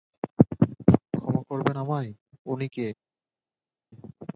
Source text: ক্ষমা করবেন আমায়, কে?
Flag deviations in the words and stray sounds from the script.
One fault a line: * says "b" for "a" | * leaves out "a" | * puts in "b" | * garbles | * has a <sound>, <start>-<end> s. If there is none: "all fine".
* puts in "উনি"